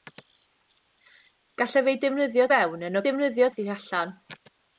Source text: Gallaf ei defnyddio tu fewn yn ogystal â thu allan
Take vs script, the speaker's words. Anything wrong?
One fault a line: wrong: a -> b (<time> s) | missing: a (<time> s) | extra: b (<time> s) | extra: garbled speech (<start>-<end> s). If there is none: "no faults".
missing: tu (2.5 s)
wrong: ogystal -> defnyddio (3.1 s)